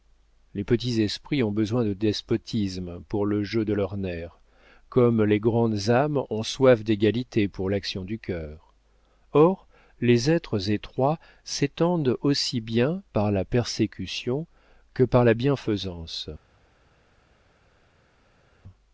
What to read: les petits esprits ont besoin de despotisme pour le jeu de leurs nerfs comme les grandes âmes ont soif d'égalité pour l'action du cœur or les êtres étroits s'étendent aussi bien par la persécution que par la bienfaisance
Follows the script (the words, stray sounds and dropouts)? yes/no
yes